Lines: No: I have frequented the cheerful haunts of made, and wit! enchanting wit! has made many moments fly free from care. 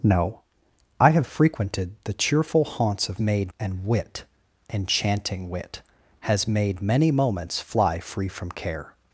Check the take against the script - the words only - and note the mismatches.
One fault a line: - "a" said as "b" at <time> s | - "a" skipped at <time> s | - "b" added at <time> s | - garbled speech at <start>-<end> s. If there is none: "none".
none